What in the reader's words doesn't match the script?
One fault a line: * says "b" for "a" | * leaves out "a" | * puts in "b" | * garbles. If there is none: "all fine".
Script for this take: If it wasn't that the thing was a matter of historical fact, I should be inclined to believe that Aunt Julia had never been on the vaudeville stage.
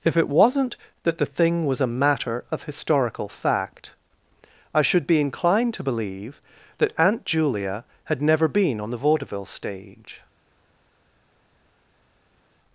all fine